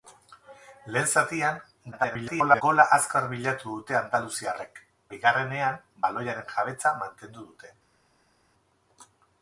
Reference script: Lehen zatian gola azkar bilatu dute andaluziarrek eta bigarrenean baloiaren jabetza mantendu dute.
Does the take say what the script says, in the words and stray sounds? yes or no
no